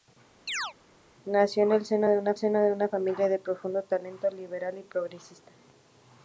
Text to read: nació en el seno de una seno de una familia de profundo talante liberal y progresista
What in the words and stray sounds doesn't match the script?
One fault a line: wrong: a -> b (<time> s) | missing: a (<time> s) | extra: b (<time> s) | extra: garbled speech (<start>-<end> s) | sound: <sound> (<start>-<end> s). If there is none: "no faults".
sound: chirp (0.5-0.7 s)